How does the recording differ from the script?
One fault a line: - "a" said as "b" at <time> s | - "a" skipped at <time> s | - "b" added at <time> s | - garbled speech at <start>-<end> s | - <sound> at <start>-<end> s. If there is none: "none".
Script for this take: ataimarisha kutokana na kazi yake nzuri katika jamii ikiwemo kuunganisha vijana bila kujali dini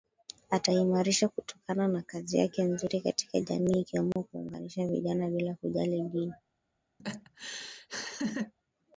- dropout at 4.1-4.2 s
- laugh at 7.0-8.5 s